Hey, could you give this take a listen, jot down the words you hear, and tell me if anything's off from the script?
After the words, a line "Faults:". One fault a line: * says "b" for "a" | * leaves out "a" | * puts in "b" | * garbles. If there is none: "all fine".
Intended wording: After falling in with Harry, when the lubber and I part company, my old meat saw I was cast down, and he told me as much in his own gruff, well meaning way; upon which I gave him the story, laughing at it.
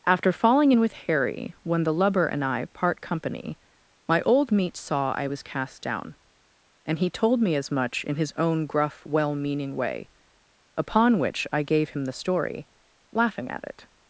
After falling in with Harry, when the lubber and I part company, my old meat saw I was cast down, and he told me as much in his own gruff, well meaning way; upon which I gave him the story, laughing at it.
Faults:
all fine